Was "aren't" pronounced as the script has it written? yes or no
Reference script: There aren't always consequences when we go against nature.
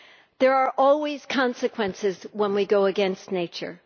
no